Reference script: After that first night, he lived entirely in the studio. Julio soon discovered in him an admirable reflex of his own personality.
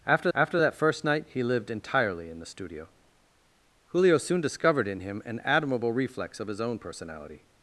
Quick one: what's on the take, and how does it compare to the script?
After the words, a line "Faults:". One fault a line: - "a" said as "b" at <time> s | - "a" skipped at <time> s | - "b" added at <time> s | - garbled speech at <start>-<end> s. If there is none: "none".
After after that first night, he lived entirely in the studio. Julio soon discovered in him an admirable reflex of his own personality.
Faults:
- "after" added at 0.3 s